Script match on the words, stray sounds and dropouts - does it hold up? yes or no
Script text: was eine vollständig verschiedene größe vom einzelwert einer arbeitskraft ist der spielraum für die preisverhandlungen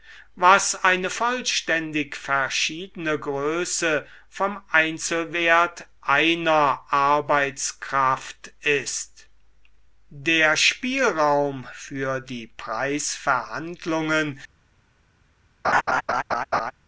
no